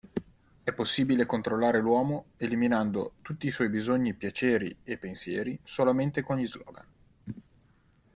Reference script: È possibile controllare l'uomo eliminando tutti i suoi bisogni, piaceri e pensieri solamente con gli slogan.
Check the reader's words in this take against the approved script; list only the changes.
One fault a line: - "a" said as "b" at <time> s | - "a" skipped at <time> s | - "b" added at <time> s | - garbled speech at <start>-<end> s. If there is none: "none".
none